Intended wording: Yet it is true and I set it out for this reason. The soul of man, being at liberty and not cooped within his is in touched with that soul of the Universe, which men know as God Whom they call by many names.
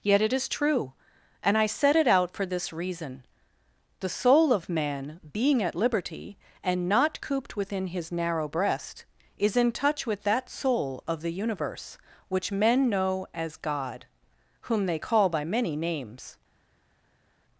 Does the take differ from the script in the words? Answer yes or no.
yes